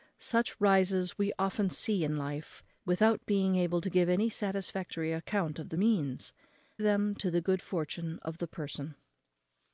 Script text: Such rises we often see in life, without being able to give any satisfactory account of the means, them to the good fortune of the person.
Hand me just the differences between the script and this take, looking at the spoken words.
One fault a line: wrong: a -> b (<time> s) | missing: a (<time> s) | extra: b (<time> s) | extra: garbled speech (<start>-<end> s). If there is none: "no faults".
no faults